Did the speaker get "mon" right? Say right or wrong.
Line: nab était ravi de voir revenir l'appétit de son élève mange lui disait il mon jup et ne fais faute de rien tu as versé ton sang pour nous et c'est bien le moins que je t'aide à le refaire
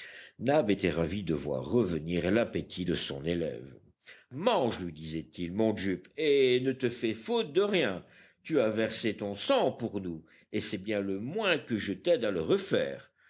right